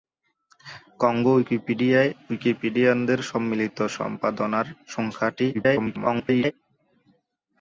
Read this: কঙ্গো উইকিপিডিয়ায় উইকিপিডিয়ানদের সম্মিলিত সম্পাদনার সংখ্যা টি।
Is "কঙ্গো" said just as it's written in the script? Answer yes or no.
yes